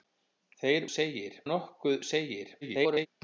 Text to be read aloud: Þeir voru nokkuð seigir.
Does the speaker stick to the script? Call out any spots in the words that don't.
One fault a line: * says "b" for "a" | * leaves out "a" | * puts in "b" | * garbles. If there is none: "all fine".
* says "seigir" for "voru"
* garbles